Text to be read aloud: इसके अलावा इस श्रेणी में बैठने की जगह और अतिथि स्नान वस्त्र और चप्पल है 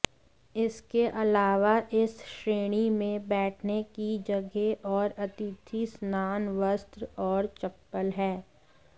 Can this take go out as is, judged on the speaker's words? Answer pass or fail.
pass